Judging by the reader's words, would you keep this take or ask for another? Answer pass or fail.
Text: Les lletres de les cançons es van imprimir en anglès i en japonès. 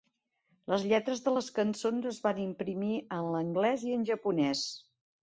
pass